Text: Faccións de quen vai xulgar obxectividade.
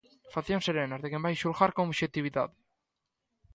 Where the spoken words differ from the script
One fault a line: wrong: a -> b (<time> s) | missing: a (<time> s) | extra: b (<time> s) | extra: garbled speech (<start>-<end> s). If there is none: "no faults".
extra: serenas (0.7 s)
extra: con (1.7 s)